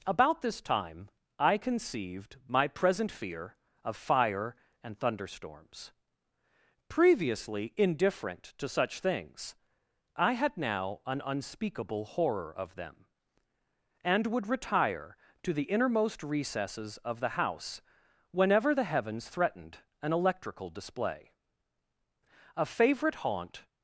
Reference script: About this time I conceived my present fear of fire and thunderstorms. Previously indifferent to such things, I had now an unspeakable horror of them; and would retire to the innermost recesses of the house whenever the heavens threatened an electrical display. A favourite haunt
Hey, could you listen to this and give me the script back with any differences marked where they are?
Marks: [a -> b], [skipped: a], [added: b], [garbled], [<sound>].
About this time I conceived my present fear of fire and thunderstorms. Previously indifferent to such things, I had now an unspeakable horror of them; and would retire to the innermost recesses of the house whenever the heavens threatened an electrical display. A favourite haunt